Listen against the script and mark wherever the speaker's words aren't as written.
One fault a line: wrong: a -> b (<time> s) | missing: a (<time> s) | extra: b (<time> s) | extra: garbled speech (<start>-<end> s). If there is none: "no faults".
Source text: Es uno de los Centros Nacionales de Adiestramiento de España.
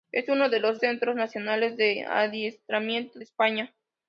no faults